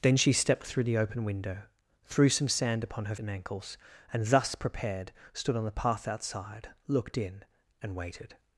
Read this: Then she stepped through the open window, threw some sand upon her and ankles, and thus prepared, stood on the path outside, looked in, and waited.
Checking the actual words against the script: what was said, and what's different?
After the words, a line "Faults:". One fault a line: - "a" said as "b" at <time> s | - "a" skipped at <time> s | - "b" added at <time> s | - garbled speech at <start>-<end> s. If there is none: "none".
Then she stepped through the open window, threw some sand upon her and ankles, and thus prepared, stood on the path outside, looked in, and waited.
Faults:
none